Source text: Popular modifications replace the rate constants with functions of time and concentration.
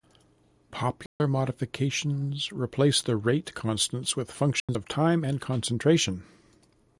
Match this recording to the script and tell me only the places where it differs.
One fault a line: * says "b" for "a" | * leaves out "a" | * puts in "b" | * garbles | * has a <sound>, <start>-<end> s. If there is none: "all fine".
* has a dropout, 1.1-1.2 s
* has a dropout, 4.6-4.7 s